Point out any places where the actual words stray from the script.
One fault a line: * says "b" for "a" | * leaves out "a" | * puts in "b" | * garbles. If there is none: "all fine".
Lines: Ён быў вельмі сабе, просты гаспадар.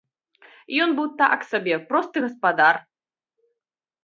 * says "так" for "вельмі"